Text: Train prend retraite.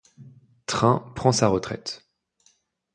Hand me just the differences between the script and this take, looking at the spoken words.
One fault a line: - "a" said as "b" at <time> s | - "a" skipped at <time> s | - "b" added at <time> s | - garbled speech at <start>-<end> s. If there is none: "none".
- "sa" added at 1.3 s